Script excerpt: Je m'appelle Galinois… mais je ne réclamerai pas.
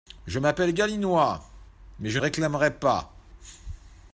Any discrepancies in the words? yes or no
yes